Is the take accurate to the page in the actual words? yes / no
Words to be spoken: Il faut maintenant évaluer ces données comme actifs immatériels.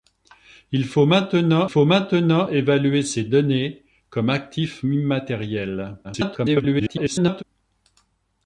no